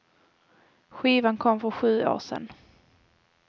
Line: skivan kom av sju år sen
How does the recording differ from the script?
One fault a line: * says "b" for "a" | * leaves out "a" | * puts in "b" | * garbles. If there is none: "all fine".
* says "för" for "av"